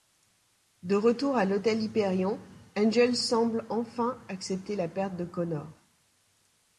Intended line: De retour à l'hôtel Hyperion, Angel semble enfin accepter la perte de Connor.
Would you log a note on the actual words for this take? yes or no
no